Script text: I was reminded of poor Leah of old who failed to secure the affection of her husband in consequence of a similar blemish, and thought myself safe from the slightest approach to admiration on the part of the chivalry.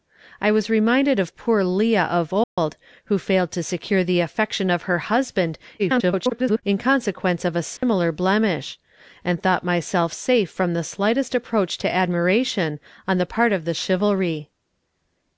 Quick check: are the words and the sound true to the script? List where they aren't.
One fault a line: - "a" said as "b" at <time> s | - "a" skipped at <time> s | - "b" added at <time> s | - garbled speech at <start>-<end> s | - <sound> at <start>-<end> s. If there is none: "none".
- dropout at 2.4-2.6 s
- garbled speech at 5.8-6.6 s
- dropout at 7.8-7.8 s